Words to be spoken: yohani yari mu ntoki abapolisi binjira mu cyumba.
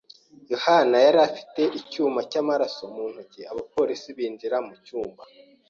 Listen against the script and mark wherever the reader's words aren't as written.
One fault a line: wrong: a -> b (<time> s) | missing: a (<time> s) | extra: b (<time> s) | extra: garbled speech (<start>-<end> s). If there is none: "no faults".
extra: afite icyuma cyamaraso (1.3 s)